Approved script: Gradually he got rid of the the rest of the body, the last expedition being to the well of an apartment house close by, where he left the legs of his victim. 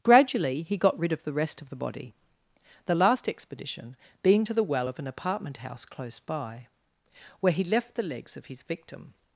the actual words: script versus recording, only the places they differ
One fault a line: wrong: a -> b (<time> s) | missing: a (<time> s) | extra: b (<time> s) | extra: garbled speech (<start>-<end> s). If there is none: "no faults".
missing: the (1.3 s)